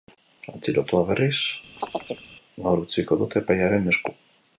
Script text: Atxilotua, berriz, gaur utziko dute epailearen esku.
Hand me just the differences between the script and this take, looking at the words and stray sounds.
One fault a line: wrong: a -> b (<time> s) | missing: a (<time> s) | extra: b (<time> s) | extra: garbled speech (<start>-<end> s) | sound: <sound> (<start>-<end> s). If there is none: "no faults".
sound: chirp (1.8-2.3 s)